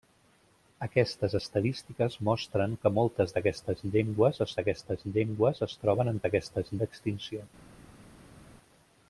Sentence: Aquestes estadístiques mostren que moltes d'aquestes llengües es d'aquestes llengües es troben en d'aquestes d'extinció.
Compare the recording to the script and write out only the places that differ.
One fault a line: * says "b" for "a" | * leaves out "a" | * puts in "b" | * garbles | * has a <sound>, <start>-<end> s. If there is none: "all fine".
all fine